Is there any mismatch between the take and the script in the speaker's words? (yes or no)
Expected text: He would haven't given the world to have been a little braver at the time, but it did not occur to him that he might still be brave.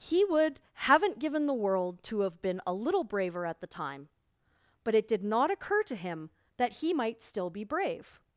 no